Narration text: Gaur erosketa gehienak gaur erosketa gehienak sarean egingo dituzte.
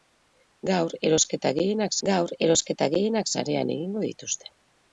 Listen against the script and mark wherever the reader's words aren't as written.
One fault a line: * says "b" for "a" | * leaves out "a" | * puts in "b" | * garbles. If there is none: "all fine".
all fine